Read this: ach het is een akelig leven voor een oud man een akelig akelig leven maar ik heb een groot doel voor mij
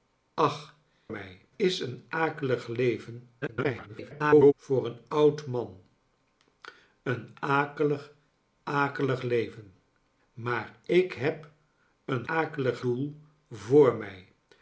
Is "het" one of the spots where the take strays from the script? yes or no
yes